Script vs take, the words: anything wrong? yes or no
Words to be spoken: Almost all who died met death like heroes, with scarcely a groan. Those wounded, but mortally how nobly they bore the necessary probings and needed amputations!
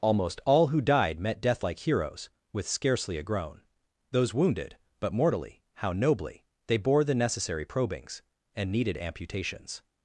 no